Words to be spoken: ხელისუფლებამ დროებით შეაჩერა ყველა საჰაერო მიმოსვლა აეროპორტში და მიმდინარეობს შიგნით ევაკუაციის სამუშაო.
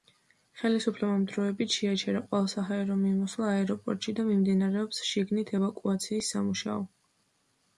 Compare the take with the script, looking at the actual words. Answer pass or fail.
pass